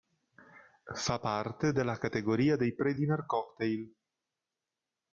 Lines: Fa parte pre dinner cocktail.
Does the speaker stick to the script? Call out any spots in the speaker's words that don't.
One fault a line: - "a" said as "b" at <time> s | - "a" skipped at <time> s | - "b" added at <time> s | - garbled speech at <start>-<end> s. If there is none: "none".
- "della categoria dei" added at 1.7 s